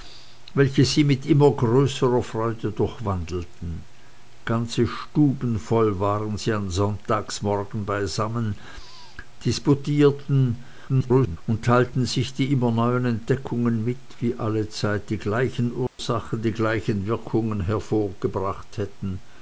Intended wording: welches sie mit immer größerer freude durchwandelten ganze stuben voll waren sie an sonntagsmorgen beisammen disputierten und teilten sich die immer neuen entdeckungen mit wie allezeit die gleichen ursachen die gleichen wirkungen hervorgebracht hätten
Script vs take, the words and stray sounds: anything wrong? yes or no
yes